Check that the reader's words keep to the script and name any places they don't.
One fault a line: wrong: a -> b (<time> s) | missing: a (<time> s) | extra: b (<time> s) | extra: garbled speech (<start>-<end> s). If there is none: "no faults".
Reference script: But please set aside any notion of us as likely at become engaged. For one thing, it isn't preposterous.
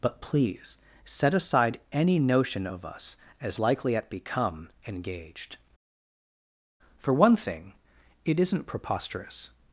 no faults